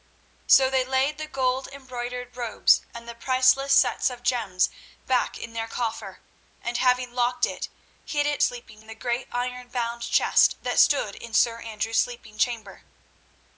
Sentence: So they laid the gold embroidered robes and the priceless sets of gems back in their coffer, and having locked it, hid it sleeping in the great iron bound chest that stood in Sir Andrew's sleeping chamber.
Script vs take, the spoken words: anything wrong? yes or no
no